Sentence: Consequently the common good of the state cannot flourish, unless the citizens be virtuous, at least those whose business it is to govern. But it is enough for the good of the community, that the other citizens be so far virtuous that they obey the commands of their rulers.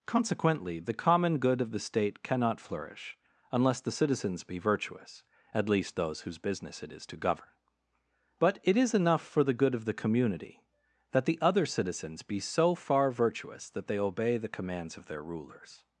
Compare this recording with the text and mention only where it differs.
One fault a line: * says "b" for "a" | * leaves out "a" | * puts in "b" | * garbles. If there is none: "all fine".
all fine